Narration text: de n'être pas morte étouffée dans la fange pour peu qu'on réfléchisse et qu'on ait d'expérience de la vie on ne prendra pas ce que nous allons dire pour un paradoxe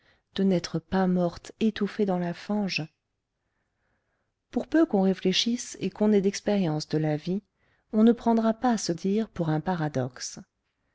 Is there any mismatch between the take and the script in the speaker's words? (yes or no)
yes